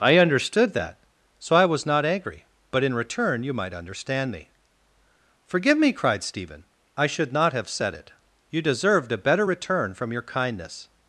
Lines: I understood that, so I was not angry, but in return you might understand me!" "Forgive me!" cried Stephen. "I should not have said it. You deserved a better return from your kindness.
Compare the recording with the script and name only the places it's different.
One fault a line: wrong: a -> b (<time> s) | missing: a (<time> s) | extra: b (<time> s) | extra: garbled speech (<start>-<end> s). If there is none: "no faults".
no faults